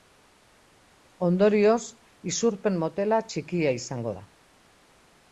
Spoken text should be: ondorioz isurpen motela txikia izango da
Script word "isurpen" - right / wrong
right